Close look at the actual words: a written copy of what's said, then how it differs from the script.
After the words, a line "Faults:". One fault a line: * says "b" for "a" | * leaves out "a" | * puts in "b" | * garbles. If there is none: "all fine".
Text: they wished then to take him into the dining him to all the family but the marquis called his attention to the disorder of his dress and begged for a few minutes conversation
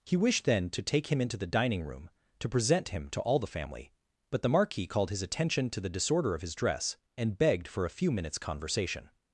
he wished then to take him into the dining room to present him to all the family but the marquis called his attention to the disorder of his dress and begged for a few minutes conversation
Faults:
* says "he" for "they"
* puts in "room to present"